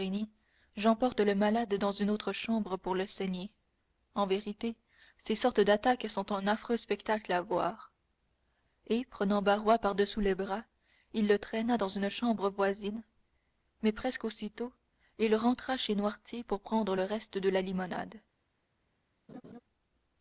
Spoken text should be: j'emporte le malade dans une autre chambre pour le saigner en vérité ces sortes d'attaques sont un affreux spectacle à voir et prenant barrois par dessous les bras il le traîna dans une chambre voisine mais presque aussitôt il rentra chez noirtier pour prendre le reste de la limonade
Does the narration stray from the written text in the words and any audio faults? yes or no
yes